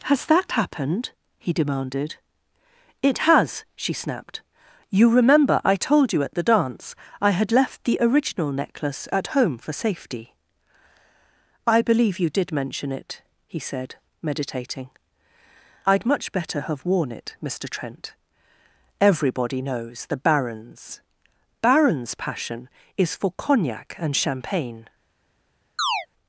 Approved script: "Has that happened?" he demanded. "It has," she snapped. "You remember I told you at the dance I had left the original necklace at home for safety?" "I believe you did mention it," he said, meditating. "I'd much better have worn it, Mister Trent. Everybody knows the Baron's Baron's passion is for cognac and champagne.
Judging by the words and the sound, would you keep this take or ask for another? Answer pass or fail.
fail